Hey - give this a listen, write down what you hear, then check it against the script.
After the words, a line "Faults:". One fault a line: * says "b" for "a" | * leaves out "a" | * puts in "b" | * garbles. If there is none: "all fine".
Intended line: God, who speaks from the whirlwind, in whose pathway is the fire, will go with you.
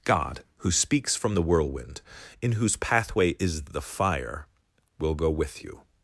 God, who speaks from the whirlwind, in whose pathway is the fire, will go with you.
Faults:
all fine